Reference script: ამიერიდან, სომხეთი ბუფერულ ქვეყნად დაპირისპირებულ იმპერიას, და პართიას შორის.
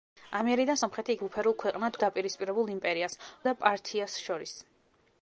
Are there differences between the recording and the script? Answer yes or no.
no